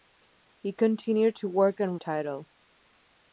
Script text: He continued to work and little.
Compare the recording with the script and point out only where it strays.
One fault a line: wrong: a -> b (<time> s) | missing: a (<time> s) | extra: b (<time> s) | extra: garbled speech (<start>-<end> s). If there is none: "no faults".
no faults